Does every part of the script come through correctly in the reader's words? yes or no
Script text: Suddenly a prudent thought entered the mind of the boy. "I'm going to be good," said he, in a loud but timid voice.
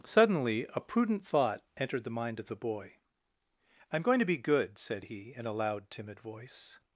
no